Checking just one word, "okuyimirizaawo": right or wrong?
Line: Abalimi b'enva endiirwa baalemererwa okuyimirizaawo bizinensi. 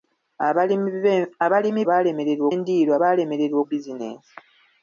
wrong